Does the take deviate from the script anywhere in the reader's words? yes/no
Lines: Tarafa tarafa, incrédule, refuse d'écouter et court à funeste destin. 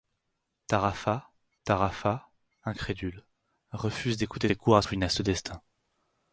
no